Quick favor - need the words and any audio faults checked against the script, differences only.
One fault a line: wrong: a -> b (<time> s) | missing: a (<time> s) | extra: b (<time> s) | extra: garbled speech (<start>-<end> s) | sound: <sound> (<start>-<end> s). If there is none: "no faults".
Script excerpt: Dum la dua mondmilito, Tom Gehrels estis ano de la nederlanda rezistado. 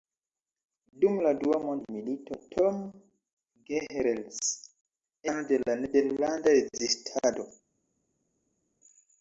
missing: estis (4.4 s)